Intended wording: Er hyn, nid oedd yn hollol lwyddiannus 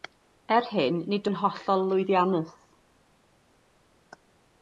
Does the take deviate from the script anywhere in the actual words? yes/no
yes